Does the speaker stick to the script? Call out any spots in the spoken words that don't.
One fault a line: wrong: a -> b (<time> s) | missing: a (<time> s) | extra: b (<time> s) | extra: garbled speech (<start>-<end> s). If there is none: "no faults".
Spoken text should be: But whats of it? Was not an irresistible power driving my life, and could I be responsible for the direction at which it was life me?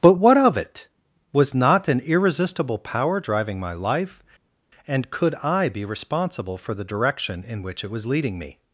wrong: whats -> what (0.1 s)
wrong: at -> in (7.5 s)
wrong: life -> leading (8.0 s)